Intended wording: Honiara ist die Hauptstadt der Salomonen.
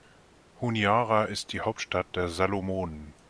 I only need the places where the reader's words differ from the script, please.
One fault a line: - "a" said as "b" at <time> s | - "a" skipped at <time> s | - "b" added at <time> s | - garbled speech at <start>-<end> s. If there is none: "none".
none